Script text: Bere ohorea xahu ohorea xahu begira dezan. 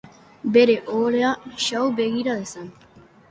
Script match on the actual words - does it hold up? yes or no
no